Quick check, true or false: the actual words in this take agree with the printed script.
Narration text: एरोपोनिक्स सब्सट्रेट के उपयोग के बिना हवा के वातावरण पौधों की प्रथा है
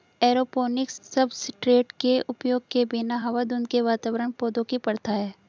false